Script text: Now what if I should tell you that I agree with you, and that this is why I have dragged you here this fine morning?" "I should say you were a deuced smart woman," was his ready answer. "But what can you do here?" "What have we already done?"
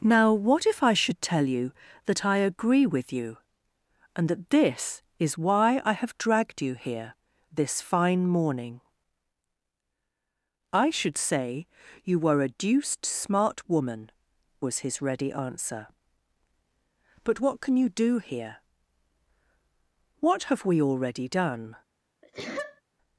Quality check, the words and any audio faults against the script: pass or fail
fail